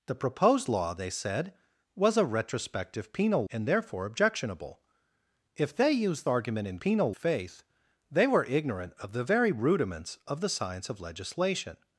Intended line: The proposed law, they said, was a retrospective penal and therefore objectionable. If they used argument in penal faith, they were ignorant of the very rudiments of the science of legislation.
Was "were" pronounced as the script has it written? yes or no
yes